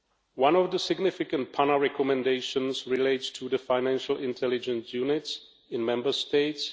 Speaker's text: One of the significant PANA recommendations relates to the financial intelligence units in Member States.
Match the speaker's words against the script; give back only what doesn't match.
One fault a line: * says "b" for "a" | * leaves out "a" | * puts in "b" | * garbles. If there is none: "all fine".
all fine